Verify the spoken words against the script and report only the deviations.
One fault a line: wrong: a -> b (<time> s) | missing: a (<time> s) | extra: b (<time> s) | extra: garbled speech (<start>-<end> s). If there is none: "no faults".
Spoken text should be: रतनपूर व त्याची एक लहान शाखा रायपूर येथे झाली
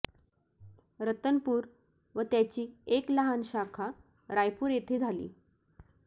no faults